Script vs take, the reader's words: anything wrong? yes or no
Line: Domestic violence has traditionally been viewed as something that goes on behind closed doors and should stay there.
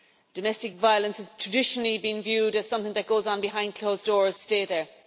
yes